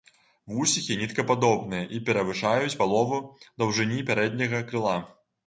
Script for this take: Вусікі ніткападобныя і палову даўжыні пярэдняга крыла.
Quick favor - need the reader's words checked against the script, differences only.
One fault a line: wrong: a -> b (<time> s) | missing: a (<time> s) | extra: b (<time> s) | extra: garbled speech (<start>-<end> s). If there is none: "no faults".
extra: перавышаюць (2.1 s)